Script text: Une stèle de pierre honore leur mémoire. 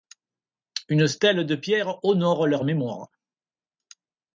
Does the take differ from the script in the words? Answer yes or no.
no